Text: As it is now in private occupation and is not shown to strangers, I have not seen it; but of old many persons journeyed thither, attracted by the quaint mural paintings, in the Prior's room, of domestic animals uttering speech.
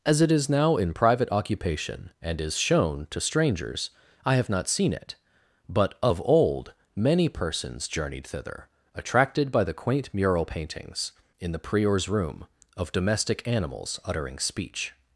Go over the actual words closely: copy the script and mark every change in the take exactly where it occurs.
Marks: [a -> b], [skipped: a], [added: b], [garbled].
As it is now in private occupation and is [skipped: not] shown to strangers, I have not seen it; but of old many persons journeyed thither, attracted by the quaint mural paintings, in the Prior's room, of domestic animals uttering speech.